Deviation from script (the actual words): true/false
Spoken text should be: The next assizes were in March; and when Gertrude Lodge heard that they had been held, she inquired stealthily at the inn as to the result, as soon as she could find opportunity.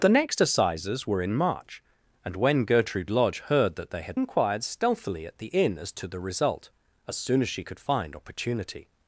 true